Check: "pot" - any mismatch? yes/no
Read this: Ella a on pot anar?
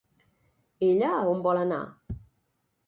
yes